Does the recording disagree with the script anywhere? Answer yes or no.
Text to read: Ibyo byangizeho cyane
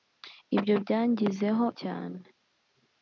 no